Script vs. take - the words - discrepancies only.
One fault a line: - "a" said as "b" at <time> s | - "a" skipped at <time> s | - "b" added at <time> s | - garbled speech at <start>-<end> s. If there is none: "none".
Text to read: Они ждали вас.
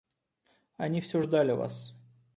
- "всё" added at 1.0 s